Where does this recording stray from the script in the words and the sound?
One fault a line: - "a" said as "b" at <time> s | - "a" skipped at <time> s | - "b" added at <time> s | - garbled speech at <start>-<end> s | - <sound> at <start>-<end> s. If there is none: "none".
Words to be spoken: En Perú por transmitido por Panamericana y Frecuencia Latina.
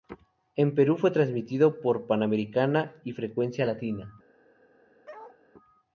- "por" said as "fue" at 1.0 s
- bark at 5.1-5.4 s